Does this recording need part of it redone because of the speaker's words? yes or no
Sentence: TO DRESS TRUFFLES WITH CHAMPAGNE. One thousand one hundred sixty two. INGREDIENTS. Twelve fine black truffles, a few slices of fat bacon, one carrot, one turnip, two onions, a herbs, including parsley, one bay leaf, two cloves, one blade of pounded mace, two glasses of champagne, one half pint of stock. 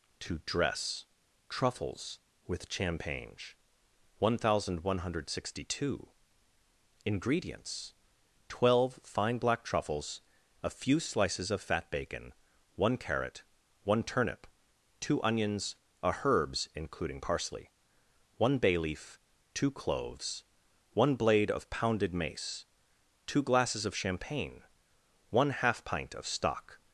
no